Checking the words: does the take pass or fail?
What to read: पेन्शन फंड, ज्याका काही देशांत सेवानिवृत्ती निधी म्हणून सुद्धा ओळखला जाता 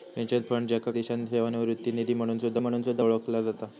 fail